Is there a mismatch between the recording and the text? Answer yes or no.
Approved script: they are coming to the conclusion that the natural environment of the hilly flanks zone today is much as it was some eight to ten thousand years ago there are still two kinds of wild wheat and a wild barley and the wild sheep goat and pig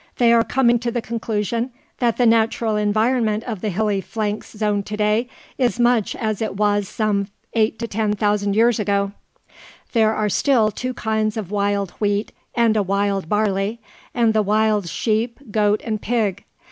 no